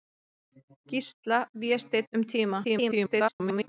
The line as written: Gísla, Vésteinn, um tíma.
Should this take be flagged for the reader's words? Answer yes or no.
yes